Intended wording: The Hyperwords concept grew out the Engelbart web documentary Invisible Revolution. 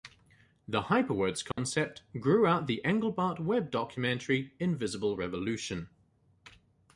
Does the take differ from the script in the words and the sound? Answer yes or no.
yes